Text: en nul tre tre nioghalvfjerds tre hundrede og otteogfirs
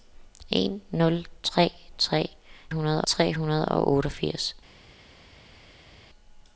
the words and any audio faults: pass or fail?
fail